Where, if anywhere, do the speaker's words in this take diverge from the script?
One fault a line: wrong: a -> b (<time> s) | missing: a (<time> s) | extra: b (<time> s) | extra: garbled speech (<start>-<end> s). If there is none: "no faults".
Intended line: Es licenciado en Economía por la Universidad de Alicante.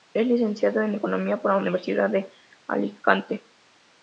no faults